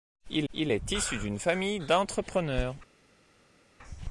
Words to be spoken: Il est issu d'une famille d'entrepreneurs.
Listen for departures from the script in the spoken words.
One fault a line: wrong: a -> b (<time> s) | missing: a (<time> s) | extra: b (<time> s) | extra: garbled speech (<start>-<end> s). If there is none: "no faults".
extra: il (0.5 s)